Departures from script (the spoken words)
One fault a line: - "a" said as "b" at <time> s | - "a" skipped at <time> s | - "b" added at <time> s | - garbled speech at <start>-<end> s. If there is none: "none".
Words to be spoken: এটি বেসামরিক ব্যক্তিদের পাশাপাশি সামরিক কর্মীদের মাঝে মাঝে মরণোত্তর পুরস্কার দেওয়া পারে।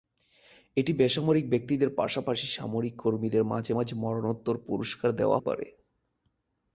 none